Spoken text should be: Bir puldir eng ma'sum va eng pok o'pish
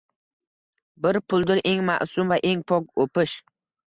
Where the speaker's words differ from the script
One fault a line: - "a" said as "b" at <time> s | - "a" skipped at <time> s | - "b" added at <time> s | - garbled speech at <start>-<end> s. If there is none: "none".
none